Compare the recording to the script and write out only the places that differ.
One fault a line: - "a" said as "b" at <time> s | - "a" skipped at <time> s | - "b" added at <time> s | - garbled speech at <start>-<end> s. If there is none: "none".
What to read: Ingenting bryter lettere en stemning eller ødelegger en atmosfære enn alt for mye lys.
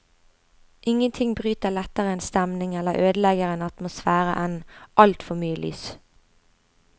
none